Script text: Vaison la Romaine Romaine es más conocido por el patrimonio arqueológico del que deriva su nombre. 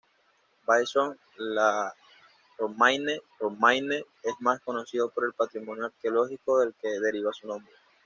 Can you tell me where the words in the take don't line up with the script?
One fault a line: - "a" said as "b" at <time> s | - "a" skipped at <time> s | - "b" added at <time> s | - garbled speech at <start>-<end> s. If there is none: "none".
none